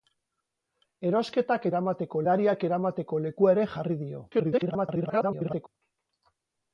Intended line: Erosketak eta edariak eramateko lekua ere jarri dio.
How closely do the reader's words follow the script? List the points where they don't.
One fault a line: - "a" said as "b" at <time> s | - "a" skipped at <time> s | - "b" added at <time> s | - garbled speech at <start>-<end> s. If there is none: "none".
- "eta" said as "eramateko" at 1.7 s
- garbled speech at 4.3-5.7 s